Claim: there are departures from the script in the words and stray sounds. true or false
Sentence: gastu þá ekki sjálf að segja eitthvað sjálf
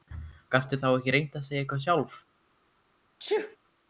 true